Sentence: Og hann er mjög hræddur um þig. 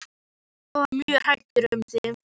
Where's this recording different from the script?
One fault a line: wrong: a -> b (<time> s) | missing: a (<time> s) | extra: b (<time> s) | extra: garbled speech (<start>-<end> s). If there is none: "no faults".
missing: hann (0.8 s)